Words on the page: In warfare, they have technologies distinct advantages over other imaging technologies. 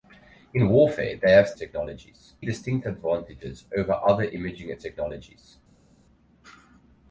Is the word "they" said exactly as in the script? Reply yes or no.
yes